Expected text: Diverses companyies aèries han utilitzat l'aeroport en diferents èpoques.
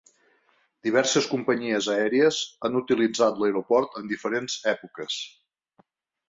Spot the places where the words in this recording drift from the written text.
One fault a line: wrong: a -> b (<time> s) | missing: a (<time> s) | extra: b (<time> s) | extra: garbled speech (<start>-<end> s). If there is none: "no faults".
no faults